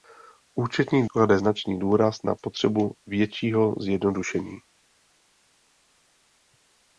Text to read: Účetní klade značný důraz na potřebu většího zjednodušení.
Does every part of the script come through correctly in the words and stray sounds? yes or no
yes